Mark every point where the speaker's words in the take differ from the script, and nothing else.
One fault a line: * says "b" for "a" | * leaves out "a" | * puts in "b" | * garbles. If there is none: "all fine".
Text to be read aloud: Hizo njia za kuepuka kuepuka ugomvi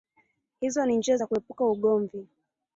* puts in "ni"
* leaves out "kuepuka"